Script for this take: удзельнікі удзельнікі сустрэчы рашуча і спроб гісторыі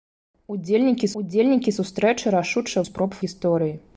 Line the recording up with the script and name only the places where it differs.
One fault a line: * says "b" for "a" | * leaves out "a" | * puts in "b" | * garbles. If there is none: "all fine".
all fine